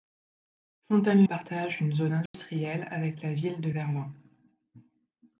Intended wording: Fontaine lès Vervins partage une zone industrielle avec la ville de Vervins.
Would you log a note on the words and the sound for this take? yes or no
yes